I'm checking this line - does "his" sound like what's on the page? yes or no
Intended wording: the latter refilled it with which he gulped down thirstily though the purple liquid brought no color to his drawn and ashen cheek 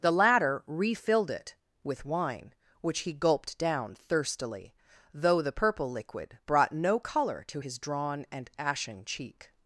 yes